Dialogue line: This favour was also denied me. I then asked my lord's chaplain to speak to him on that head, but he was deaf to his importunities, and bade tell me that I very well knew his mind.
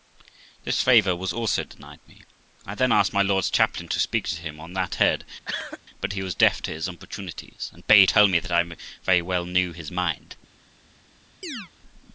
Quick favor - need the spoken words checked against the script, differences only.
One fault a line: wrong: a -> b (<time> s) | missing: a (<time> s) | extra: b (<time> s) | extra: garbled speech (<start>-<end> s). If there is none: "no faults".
no faults